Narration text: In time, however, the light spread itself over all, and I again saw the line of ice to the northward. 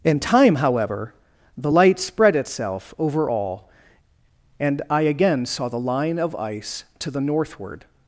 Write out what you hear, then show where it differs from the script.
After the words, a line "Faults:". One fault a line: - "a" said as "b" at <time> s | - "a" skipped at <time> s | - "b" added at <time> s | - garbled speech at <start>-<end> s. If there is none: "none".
In time, however, the light spread itself over all, and I again saw the line of ice to the northward.
Faults:
none